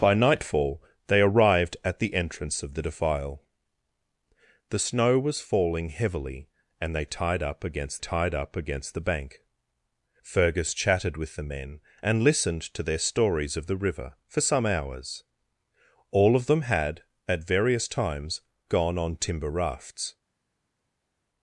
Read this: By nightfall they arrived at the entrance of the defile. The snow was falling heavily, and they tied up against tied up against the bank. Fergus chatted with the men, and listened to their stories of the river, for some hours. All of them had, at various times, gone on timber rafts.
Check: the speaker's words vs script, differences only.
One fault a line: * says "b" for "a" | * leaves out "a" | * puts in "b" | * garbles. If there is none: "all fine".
all fine